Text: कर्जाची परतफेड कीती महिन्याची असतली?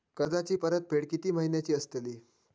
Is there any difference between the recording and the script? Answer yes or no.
no